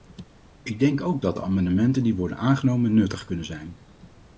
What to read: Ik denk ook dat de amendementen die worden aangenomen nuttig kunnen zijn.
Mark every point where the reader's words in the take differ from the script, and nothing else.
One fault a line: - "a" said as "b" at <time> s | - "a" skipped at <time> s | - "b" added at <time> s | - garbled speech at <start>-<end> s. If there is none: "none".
none